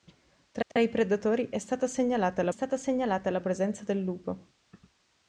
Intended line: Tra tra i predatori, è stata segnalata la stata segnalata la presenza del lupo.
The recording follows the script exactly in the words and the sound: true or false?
false